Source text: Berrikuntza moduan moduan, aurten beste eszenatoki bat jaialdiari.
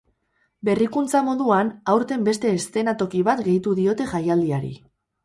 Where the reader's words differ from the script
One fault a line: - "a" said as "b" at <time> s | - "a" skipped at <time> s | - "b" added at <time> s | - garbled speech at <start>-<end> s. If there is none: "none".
- "moduan" skipped at 1.7 s
- "gehitu diote" added at 3.5 s